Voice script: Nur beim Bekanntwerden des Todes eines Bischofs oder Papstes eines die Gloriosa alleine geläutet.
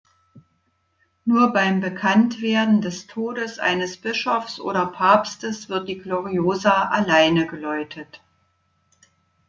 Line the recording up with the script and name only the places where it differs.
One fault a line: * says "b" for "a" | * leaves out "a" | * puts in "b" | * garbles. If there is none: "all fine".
* says "wird" for "eines"